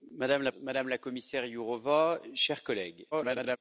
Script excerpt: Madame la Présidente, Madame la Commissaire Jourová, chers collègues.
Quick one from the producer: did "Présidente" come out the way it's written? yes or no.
no